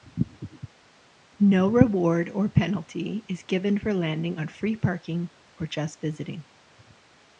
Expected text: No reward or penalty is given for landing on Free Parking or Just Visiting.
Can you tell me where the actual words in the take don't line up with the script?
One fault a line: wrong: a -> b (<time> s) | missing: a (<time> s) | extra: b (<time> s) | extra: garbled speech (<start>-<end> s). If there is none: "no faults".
no faults